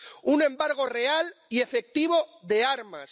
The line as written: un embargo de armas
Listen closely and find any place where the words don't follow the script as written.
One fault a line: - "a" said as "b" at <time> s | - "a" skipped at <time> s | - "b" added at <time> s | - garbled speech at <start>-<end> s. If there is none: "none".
- "real y efectivo" added at 0.8 s